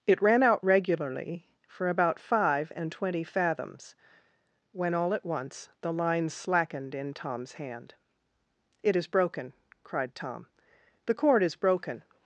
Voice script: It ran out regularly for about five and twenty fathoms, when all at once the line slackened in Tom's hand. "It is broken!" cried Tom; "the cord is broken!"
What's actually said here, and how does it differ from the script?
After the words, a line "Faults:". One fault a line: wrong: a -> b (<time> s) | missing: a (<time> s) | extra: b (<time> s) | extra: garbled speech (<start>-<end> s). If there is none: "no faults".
It ran out regularly for about five and twenty fathoms, when all at once the line slackened in Tom's hand. "It is broken!" cried Tom; "the cord is broken!"
Faults:
no faults